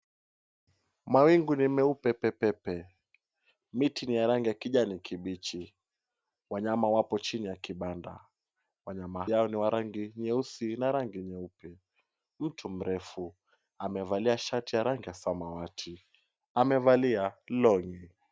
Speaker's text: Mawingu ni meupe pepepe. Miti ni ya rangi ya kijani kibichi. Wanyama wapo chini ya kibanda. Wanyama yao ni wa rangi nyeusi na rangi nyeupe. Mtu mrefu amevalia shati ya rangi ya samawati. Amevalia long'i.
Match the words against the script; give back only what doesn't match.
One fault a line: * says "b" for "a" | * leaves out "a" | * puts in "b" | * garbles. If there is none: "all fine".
all fine